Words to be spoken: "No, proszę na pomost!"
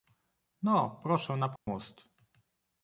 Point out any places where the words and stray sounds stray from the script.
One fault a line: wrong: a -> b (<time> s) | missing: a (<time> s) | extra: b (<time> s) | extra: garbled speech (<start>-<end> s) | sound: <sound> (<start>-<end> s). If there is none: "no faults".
sound: dropout (1.6-1.7 s)